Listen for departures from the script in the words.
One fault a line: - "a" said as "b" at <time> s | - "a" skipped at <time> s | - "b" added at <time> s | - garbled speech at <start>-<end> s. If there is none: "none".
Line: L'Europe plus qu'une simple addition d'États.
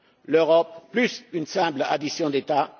none